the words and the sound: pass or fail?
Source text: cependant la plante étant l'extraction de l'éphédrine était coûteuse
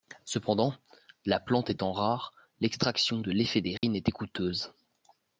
fail